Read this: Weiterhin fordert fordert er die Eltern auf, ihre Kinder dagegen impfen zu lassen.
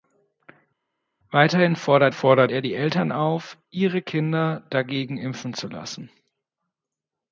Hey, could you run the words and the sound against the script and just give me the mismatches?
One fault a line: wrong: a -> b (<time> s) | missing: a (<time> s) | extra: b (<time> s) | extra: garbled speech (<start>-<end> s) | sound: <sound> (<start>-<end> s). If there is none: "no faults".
no faults